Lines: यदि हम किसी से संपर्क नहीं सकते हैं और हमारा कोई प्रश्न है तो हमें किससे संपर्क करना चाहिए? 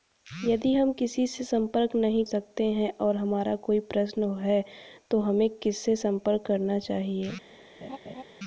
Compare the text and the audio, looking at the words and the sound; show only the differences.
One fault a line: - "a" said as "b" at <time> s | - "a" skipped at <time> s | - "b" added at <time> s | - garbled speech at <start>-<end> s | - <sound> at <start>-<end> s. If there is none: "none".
- laugh at 7.8-8.2 s